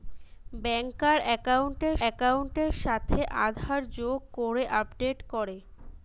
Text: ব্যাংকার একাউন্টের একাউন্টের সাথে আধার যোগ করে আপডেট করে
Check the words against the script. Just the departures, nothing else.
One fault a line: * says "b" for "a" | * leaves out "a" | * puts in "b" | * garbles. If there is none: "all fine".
all fine